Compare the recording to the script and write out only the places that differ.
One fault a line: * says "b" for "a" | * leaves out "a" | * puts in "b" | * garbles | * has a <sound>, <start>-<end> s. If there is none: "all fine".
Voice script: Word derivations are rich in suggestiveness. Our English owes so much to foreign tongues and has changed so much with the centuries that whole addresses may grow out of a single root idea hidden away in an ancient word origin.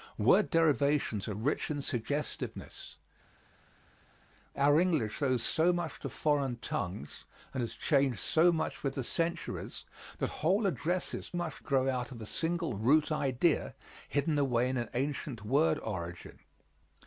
* says "much" for "may"